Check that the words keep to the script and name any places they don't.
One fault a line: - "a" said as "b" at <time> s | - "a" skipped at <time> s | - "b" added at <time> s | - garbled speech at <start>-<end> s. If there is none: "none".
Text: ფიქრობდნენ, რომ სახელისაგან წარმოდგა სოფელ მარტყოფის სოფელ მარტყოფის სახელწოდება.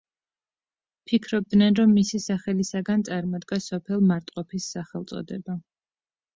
- "მისი" added at 2.0 s
- "სოფელ მარტყოფის" skipped at 4.7 s